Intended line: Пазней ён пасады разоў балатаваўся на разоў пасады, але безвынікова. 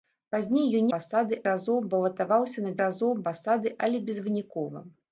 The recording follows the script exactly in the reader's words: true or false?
true